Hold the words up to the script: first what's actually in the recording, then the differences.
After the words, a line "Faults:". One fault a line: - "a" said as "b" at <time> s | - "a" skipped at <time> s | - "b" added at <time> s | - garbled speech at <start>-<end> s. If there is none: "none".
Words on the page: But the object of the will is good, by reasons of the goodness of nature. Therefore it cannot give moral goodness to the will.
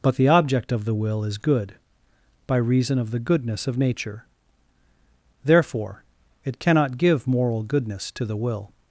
But the object of the will is good, by reason of the goodness of nature. Therefore it cannot give moral goodness to the will.
Faults:
- "reasons" said as "reason" at 2.6 s